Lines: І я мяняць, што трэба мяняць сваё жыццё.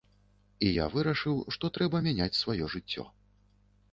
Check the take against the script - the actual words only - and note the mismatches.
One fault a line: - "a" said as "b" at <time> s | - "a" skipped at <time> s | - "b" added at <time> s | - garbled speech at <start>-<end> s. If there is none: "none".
- "мяняць" said as "вырашыў" at 0.9 s